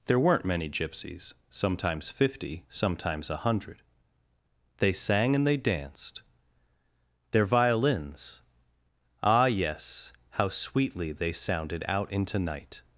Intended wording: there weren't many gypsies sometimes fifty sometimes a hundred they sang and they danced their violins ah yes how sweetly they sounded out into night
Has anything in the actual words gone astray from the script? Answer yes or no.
no